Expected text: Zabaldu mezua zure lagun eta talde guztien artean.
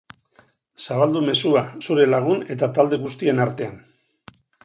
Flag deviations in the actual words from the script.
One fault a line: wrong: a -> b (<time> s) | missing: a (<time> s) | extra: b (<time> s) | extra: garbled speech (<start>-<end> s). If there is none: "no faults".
no faults